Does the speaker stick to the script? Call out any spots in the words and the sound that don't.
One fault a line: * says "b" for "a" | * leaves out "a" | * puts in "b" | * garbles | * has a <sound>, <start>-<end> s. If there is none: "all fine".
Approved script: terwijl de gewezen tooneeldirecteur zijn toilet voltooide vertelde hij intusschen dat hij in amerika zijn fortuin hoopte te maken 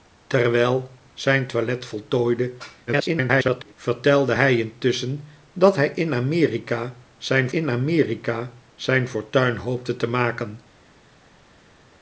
* leaves out "de gewezen tooneeldirecteur"
* garbles
* puts in "in amerika zijn"